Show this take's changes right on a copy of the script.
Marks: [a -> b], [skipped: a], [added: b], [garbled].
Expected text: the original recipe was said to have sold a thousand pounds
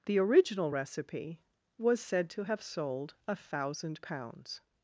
the original recipe was said to have sold a thousand pounds